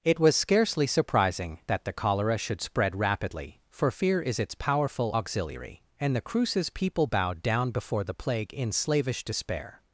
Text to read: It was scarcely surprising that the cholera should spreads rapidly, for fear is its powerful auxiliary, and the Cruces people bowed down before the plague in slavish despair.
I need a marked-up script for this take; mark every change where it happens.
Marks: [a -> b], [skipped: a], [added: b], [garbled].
It was scarcely surprising that the cholera should [spreads -> spread] rapidly, for fear is its powerful auxiliary, and the Cruces people bowed down before the plague in slavish despair.